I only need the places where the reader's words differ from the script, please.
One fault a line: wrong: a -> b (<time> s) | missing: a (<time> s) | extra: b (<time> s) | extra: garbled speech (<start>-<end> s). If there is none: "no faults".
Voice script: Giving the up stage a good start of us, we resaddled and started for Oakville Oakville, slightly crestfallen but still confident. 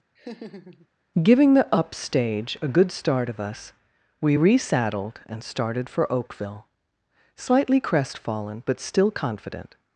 missing: Oakville (6.7 s)